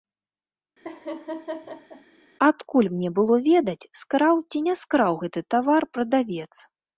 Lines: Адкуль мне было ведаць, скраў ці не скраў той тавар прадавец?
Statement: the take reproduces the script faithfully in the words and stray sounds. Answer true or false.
false